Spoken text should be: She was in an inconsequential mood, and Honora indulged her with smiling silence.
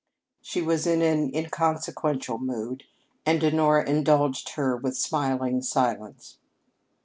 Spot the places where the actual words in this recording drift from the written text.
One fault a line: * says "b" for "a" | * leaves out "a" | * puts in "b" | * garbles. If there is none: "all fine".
all fine